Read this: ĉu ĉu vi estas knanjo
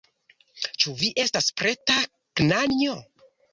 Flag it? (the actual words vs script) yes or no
yes